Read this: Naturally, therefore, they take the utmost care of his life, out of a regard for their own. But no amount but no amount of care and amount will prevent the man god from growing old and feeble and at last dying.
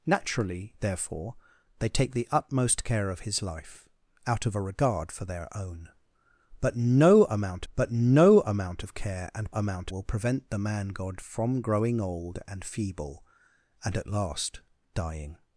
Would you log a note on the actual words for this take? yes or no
no